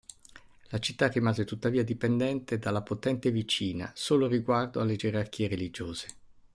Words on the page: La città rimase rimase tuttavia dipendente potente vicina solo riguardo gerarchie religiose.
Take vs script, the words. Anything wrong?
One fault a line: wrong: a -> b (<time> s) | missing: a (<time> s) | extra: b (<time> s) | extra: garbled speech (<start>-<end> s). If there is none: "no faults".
missing: rimase (1.4 s)
extra: dalla (2.6 s)
extra: alle (4.8 s)